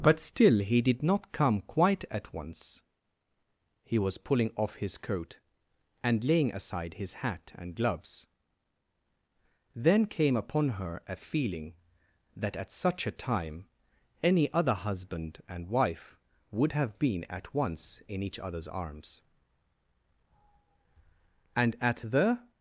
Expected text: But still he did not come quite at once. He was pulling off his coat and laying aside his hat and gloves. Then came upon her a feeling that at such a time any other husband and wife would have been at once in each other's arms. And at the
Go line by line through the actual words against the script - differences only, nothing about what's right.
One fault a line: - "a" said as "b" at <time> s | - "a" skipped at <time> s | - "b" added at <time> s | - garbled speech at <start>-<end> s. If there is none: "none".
none